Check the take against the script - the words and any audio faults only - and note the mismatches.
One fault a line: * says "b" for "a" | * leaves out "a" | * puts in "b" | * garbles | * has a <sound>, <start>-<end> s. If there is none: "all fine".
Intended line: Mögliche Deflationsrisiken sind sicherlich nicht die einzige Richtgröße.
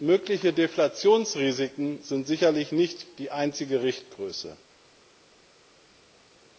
all fine